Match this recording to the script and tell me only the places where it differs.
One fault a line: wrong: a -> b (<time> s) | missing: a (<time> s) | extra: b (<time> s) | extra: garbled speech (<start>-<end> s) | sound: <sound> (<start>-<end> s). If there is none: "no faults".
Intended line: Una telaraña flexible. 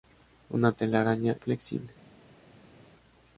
no faults